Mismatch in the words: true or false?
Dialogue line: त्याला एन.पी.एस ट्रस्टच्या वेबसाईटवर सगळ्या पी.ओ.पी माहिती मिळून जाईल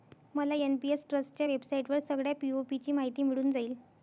true